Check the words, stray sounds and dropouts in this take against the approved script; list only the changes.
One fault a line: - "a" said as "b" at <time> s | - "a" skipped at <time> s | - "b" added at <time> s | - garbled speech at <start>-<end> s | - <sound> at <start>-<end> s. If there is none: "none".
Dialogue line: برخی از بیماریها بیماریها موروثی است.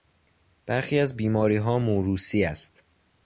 - "بیماریها" skipped at 1.8 s